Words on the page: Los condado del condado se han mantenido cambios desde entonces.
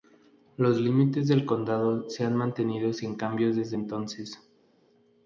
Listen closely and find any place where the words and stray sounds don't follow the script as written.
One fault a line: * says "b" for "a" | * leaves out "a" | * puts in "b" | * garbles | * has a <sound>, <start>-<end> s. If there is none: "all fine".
* says "límites" for "condado"
* puts in "sin"